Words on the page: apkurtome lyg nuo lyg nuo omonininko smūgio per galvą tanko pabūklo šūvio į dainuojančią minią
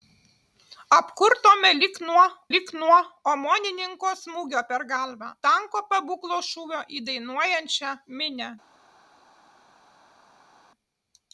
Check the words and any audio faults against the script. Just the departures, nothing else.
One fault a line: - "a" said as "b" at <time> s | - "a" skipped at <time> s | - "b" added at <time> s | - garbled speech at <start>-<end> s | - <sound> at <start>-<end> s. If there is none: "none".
none